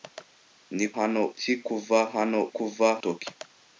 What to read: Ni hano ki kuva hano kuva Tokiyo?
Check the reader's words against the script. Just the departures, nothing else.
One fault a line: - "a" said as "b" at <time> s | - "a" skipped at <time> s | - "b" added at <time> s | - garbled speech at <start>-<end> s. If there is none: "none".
none